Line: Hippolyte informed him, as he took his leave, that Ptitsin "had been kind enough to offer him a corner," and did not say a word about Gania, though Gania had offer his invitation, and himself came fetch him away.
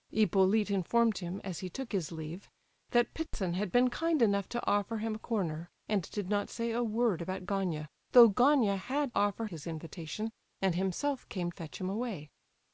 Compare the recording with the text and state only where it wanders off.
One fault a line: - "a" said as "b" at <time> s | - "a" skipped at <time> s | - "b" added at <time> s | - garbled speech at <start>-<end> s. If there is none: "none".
none